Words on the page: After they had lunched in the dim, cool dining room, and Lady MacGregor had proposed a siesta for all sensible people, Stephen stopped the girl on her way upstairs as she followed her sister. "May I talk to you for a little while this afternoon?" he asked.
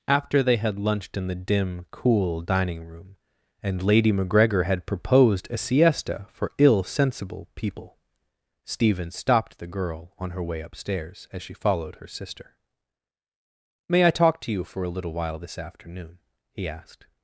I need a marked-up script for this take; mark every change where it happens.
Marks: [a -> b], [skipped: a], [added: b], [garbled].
After they had lunched in the dim, cool dining room, and Lady MacGregor had proposed a siesta for [all -> ill] sensible people, Stephen stopped the girl on her way upstairs as she followed her sister. "May I talk to you for a little while this afternoon?" he asked.